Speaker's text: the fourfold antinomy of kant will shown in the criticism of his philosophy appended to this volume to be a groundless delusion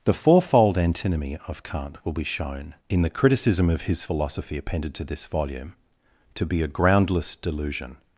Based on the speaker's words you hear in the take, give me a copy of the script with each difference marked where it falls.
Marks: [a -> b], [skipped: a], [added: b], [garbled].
the fourfold antinomy of kant will [added: be] shown in the criticism of his philosophy appended to this volume to be a groundless delusion